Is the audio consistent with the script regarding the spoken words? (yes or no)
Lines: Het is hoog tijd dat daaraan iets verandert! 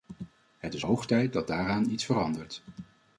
yes